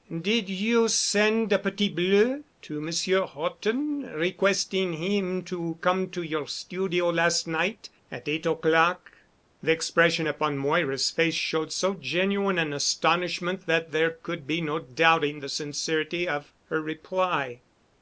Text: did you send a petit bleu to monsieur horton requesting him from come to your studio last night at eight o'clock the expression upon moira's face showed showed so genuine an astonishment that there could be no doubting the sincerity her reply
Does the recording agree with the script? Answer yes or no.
no